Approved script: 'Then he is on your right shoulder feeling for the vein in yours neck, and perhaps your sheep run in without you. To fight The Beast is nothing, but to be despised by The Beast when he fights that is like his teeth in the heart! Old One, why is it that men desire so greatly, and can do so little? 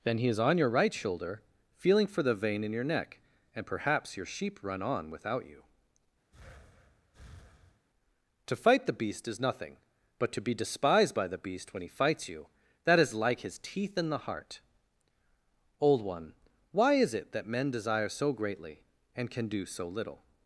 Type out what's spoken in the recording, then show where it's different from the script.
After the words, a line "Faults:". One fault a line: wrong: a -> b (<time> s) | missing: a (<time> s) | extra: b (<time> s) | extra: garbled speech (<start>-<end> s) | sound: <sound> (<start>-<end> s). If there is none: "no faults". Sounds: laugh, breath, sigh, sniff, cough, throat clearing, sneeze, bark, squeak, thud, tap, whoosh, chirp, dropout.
'Then he is on your right shoulder feeling for the vein in your neck, and perhaps your sheep run on without you. To fight The Beast is nothing, but to be despised by The Beast when he fights you that is like his teeth in the heart! Old One, why is it that men desire so greatly, and can do so little?
Faults:
wrong: yours -> your (2.7 s)
wrong: in -> on (4.8 s)
sound: breath (6.3-7.9 s)
extra: you (12.3 s)